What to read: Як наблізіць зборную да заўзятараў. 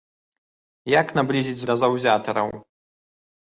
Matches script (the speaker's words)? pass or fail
fail